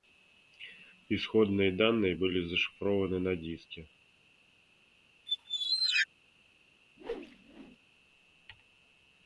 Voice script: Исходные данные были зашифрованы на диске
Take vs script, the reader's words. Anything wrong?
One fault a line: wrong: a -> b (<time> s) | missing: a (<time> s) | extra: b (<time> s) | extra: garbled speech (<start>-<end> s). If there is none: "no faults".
no faults